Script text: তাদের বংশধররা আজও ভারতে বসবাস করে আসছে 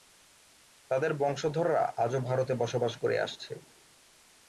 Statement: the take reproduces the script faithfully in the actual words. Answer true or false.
true